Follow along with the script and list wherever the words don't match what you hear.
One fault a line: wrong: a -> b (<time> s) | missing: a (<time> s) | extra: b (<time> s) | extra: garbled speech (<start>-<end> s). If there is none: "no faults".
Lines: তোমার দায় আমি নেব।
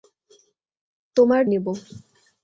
missing: দায় আমি (1.4 s)